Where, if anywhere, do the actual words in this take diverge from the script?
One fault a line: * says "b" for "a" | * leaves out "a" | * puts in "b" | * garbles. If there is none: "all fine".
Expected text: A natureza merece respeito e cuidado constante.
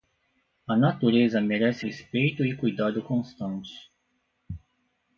all fine